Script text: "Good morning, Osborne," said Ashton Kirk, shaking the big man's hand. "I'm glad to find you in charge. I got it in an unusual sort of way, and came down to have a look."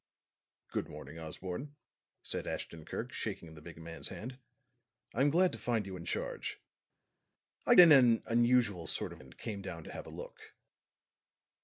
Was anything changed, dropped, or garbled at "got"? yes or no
yes